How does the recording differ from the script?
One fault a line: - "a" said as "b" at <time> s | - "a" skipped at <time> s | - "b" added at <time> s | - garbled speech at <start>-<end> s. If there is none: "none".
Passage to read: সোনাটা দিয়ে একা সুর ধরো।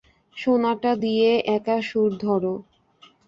none